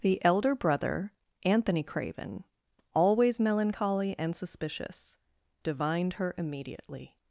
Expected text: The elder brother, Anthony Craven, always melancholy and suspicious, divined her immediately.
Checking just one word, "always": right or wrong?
right